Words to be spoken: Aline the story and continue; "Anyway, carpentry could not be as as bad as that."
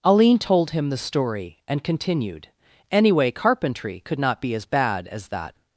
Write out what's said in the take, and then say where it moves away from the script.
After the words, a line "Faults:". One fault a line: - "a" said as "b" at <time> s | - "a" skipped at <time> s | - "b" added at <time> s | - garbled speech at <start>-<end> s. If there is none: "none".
Aline told him the story and continued; "Anyway, carpentry could not be as bad as that."
Faults:
- "told him" added at 0.4 s
- "continue" said as "continued" at 1.8 s
- "as" skipped at 4.7 s